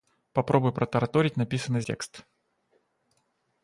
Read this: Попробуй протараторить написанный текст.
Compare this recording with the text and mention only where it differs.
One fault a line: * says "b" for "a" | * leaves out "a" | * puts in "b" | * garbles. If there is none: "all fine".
all fine